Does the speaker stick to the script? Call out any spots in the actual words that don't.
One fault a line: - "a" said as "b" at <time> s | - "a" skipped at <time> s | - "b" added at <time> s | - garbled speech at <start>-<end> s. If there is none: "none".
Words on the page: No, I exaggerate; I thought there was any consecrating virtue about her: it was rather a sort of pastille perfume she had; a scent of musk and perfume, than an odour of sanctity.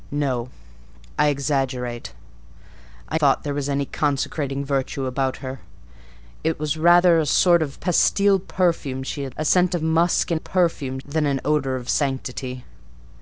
none